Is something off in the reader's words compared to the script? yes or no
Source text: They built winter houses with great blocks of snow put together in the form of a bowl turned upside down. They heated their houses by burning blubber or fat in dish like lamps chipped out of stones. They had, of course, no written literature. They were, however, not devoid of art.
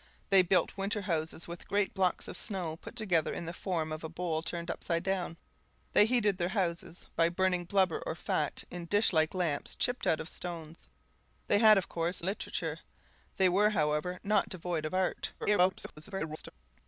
yes